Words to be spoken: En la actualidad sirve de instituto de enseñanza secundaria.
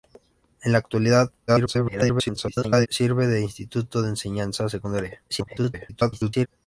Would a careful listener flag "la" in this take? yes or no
no